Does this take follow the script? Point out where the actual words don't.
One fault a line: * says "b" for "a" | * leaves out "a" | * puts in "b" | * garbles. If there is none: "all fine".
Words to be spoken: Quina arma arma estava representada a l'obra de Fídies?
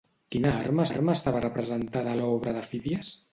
all fine